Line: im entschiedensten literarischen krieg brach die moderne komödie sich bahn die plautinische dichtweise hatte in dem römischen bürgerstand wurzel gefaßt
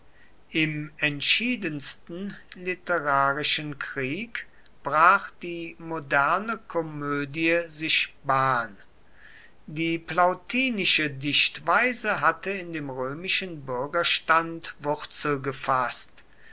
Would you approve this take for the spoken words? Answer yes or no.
yes